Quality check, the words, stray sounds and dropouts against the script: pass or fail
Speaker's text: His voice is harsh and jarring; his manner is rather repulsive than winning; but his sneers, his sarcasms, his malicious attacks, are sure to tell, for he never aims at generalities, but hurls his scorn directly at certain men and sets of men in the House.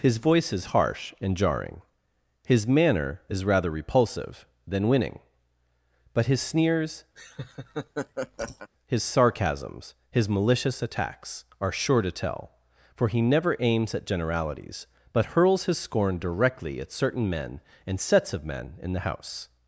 fail